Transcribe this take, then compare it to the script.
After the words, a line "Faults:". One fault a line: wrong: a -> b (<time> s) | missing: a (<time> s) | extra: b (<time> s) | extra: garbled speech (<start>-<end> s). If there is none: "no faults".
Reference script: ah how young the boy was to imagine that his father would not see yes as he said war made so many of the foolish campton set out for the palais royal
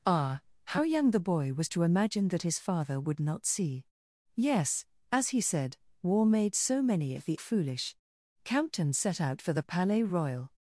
ah how young the boy was to imagine that his father would not see yes as he said war made so many of the foolish campton set out for the palais royal
Faults:
no faults